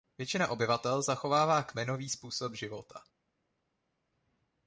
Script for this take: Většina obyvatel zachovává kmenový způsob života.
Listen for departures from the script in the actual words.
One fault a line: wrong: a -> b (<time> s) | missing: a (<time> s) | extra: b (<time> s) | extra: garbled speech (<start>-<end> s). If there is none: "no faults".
no faults